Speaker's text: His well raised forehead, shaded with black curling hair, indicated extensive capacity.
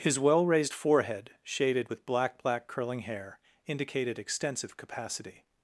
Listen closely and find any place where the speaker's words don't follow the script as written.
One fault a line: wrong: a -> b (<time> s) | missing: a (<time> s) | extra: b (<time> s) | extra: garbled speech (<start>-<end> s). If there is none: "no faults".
extra: black (2.4 s)